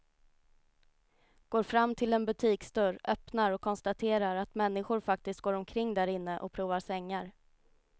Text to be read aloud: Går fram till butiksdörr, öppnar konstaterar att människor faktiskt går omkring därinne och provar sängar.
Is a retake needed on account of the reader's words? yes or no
yes